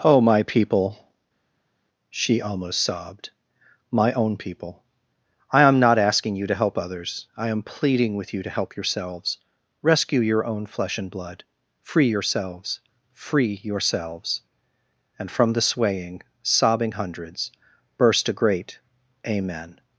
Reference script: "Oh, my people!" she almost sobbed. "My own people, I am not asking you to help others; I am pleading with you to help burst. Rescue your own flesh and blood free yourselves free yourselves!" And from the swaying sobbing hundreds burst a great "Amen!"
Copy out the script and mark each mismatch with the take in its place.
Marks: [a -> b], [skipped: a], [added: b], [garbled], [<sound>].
"Oh, my people!" she almost sobbed. "My own people, I am not asking you to help others; I am pleading with you to help [burst. -> yourselves] Rescue your own flesh and blood free yourselves free yourselves!" And from the swaying sobbing hundreds burst a great "Amen!"